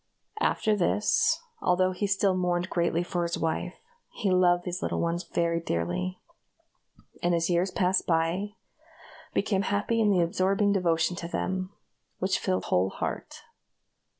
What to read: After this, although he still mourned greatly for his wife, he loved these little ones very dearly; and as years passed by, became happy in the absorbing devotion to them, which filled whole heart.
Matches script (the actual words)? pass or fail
pass